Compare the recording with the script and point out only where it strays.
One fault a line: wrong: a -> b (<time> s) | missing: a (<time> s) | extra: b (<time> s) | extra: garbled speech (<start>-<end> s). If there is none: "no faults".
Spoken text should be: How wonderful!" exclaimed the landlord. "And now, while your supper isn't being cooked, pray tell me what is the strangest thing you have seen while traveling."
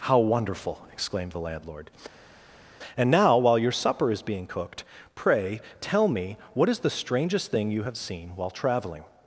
wrong: isn't -> is (4.1 s)